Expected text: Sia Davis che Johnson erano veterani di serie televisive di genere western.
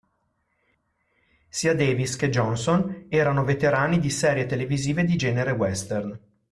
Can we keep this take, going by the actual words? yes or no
yes